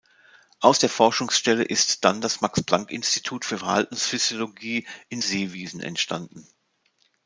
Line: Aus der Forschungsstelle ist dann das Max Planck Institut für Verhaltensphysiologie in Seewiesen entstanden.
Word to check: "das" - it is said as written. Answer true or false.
true